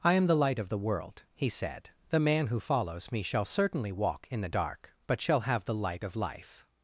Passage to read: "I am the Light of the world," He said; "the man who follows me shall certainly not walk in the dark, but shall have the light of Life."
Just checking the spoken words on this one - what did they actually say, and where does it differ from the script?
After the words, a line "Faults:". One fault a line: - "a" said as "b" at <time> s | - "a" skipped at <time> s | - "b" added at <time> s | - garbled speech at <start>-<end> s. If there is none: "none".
"I am the Light of the world," He said; "the man who follows me shall certainly walk in the dark, but shall have the light of Life."
Faults:
- "not" skipped at 3.9 s